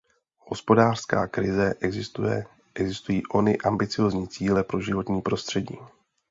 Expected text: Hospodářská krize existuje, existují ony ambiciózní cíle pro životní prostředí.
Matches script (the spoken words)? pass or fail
pass